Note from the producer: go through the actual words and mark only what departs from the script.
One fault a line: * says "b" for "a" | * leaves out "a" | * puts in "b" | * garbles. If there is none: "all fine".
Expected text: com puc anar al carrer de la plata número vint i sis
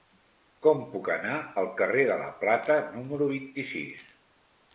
all fine